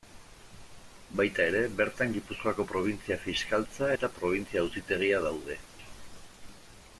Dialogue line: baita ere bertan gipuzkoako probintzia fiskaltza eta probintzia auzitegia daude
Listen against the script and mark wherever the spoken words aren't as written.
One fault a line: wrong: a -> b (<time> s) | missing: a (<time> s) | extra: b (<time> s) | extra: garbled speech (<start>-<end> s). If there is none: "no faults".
no faults